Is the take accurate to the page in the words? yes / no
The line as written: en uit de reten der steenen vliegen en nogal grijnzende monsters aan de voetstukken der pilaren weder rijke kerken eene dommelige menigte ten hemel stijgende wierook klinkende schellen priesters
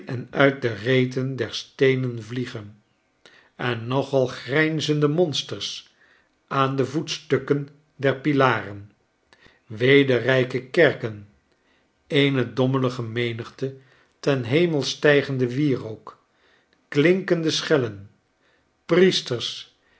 yes